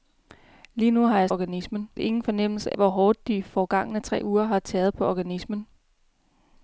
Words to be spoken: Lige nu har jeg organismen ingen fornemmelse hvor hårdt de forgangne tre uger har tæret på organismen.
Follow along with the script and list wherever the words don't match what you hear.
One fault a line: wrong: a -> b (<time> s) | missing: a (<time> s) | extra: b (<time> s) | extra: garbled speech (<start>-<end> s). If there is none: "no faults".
no faults